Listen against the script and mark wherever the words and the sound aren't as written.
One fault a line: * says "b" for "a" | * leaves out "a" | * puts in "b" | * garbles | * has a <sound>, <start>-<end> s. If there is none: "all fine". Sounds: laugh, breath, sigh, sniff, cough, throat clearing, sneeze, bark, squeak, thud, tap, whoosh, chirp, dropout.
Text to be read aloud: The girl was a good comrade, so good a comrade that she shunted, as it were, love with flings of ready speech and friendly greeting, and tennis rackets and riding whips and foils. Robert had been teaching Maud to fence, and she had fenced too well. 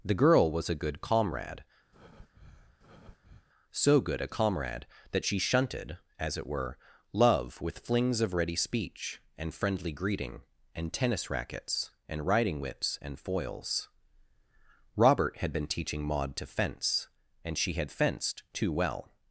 * has a breath, 1.9-3.5 s